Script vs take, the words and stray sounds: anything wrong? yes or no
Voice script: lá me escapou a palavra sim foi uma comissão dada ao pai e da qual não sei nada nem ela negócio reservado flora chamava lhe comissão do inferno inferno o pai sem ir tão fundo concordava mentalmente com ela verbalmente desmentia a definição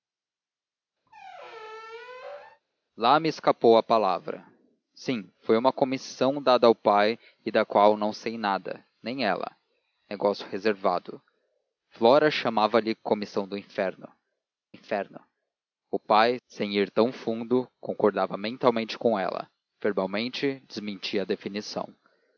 yes